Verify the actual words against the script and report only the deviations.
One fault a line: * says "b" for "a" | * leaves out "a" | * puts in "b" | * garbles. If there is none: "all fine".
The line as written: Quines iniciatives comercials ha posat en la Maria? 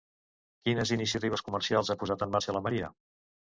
* puts in "marxa"